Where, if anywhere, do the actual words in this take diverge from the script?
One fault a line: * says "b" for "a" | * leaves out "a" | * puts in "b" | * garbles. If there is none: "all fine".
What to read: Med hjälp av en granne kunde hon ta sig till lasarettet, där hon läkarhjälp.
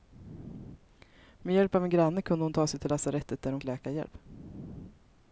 all fine